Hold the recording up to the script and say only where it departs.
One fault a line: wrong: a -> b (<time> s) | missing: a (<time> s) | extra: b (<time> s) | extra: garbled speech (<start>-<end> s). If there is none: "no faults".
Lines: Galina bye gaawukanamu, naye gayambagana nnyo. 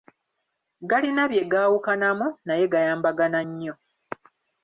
no faults